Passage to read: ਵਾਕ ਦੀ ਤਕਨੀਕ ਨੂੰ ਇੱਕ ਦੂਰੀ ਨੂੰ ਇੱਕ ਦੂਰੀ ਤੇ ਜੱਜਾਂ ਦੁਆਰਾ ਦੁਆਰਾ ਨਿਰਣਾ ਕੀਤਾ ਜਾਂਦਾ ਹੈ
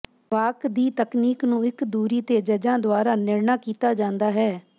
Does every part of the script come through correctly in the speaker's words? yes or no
no